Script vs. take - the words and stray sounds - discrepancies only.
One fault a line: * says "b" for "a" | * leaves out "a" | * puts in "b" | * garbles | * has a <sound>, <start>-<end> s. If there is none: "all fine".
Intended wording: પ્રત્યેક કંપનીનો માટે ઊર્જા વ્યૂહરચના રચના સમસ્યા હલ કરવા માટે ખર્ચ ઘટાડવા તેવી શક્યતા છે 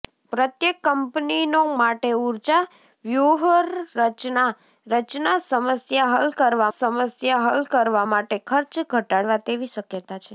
* puts in "સમસ્યા હલ કરવા"